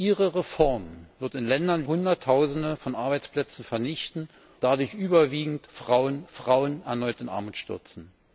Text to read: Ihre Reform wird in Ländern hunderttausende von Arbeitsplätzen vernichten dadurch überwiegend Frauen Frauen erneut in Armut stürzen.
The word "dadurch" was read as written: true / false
true